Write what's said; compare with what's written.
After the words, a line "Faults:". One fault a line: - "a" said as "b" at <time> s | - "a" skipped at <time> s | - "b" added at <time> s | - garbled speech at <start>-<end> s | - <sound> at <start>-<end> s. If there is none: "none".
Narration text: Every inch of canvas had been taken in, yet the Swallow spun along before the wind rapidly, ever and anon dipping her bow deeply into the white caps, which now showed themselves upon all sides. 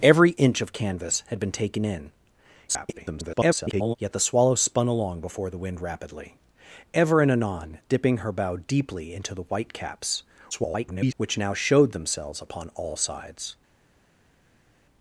Every inch of canvas had been taken in, [garbled] yet the Swallow spun along before the wind rapidly, ever and anon dipping her bow deeply into the white caps, [garbled] which now showed themselves upon all sides.
Faults:
- garbled speech at 2.7-4.0 s
- garbled speech at 10.5-11.1 s